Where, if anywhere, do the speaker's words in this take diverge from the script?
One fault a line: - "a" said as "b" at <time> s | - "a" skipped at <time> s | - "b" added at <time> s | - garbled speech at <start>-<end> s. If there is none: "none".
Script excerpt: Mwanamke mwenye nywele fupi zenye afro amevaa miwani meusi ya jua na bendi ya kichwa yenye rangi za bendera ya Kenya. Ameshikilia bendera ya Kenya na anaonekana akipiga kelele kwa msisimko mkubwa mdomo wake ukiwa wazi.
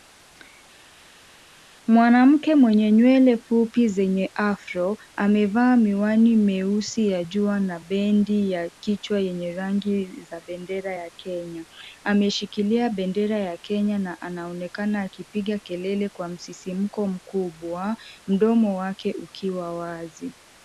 none